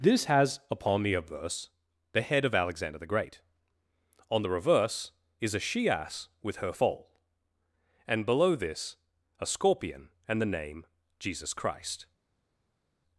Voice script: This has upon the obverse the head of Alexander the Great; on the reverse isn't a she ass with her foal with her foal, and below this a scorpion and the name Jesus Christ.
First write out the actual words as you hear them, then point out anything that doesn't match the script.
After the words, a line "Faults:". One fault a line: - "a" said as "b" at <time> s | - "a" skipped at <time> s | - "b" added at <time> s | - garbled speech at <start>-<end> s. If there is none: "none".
This has upon the obverse the head of Alexander the Great; on the reverse is a she ass with her foal, and below this a scorpion and the name Jesus Christ.
Faults:
- "isn't" said as "is" at 5.4 s
- "with her foal" skipped at 7.2 s